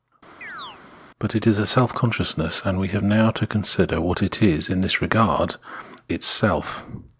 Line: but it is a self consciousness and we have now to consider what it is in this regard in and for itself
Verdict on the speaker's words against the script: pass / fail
fail